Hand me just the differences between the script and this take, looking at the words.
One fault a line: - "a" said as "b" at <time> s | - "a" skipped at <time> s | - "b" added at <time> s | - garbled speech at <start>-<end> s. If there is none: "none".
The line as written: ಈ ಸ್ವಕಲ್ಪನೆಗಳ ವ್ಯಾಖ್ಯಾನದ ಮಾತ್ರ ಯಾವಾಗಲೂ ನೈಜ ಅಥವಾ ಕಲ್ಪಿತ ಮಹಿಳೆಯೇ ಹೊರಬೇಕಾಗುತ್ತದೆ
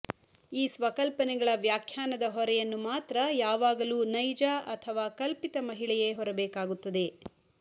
- "ಹೊರೆಯನ್ನು" added at 2.3 s